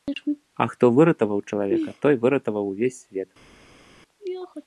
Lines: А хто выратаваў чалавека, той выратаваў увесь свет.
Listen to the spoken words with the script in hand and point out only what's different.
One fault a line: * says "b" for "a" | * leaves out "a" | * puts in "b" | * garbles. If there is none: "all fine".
all fine